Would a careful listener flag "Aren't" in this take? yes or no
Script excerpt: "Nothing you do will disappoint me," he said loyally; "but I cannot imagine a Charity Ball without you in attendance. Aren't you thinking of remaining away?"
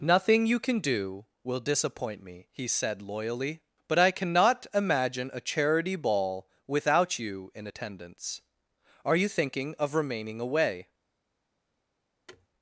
yes